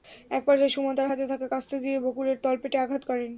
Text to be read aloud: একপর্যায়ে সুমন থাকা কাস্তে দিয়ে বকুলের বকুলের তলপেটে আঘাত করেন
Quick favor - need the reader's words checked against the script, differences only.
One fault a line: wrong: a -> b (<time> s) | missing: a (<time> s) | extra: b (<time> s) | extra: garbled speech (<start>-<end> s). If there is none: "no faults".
extra: তাঁর হাতে (1.0 s)
missing: বকুলের (2.4 s)